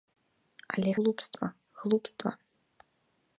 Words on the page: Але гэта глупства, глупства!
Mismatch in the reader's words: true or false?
true